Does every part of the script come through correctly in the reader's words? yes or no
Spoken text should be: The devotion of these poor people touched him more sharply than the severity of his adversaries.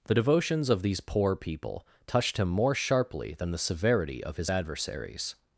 no